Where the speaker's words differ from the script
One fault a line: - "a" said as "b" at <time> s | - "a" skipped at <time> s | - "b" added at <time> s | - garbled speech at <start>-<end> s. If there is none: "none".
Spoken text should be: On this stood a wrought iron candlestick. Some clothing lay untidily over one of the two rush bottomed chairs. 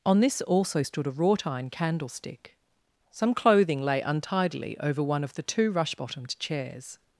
- "also" added at 0.4 s